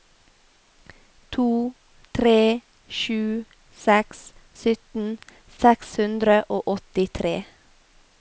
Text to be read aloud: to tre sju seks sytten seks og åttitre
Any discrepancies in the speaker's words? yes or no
yes